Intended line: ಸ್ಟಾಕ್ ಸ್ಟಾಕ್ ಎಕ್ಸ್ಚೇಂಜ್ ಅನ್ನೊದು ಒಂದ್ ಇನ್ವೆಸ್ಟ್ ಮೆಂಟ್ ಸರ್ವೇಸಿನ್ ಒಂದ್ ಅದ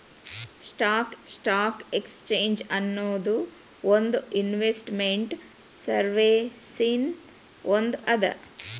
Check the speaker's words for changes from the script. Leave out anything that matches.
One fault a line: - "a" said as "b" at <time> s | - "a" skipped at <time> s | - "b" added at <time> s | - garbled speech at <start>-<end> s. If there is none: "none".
none